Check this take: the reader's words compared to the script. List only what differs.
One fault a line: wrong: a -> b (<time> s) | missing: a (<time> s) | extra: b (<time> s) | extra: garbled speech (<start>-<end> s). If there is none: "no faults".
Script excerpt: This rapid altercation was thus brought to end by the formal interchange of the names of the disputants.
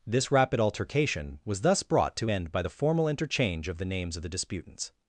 no faults